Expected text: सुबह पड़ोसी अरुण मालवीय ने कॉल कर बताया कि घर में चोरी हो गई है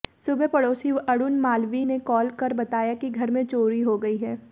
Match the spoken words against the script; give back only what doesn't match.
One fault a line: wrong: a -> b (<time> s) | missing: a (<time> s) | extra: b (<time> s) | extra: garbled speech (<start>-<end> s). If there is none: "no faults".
no faults